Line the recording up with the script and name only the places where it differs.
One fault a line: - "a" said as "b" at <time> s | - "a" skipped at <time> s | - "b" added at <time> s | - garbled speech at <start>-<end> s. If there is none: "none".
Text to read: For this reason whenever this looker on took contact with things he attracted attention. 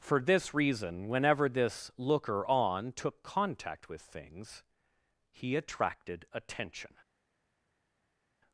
none